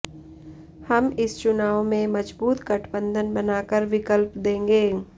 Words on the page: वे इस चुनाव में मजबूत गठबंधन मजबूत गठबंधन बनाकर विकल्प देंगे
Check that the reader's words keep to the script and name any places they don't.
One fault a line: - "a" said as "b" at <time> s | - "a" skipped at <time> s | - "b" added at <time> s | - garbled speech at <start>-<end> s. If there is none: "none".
- "वे" said as "हम" at 0.9 s
- "मजबूत गठबंधन" skipped at 3.3 s